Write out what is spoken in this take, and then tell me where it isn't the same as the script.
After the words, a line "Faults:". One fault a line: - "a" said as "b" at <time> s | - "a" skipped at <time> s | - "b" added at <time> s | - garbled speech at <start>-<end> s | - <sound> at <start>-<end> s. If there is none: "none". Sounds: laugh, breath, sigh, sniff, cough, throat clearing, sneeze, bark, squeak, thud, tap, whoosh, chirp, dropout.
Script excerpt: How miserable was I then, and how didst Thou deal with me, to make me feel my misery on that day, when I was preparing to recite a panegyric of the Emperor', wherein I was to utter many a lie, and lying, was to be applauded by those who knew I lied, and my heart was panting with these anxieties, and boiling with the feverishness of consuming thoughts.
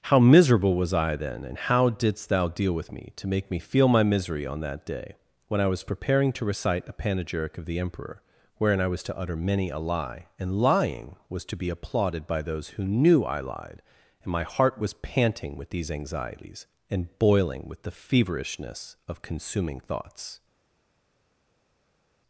How miserable was I then, and how didst Thou deal with me, to make me feel my misery on that day, when I was preparing to recite a panegyric of the Emperor', wherein I was to utter many a lie, and lying, was to be applauded by those who knew I lied, and my heart was panting with these anxieties, and boiling with the feverishness of consuming thoughts.
Faults:
none